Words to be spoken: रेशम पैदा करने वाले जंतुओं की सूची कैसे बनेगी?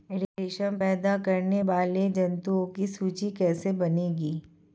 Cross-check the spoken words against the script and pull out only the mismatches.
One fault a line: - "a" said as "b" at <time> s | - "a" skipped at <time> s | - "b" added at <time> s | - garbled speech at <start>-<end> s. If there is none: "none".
none